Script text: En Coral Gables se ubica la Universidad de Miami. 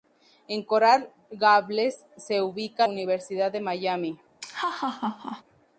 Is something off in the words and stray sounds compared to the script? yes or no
yes